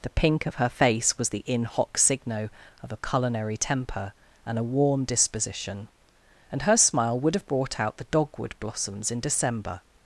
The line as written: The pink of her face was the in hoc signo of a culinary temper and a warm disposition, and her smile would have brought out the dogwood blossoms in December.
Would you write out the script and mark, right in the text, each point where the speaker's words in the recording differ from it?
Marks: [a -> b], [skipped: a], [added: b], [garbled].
The pink of her face was the in hoc signo of a culinary temper and a warm disposition, and her smile would have brought out the dogwood blossoms in December.